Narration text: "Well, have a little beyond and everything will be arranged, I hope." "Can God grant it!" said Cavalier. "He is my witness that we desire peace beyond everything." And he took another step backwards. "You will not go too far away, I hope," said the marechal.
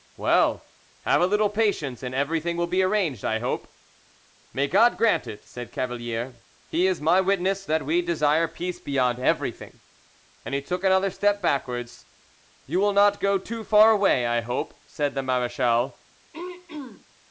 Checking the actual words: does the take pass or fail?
fail